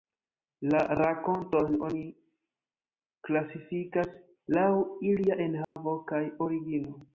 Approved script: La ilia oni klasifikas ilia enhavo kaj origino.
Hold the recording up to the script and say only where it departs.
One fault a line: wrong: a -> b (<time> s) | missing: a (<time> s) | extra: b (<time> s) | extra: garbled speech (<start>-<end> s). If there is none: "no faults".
wrong: ilia -> rakontojn (1.0 s)
extra: laŭ (4.6 s)